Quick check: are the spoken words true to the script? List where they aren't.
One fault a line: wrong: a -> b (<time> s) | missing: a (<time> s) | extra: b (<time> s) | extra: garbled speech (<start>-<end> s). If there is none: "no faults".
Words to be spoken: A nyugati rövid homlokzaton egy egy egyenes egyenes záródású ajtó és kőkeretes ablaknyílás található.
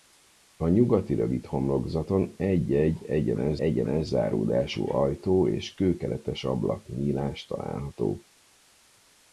no faults